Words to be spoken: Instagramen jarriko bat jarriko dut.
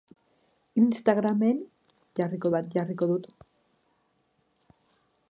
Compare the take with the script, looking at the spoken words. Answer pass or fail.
pass